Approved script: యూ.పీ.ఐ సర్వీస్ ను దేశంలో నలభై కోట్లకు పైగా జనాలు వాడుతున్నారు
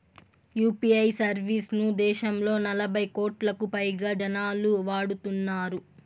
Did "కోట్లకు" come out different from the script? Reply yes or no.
no